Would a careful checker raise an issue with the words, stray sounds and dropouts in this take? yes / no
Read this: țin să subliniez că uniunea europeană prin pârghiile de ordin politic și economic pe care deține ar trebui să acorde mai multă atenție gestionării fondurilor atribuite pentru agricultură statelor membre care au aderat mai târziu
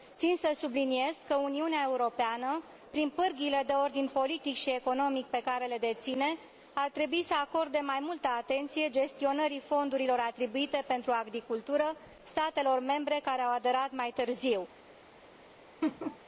yes